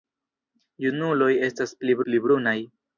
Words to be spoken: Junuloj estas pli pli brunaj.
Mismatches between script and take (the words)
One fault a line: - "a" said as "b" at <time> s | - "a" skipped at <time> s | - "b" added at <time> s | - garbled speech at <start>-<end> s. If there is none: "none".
none